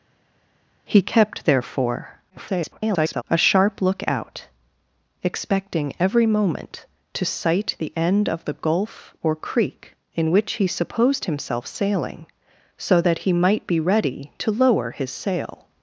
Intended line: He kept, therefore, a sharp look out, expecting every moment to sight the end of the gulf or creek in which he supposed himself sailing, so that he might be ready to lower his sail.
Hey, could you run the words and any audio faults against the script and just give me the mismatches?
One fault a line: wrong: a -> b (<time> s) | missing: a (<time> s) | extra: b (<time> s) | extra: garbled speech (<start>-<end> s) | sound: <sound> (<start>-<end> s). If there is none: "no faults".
extra: garbled speech (2.3-3.2 s)